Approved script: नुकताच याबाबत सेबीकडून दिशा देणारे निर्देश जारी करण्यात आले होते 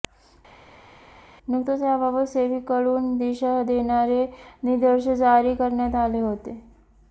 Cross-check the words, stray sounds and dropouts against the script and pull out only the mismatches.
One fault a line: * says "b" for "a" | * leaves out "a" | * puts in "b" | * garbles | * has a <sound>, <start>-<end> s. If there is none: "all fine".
all fine